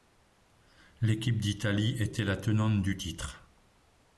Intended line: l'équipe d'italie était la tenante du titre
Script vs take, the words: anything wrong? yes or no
no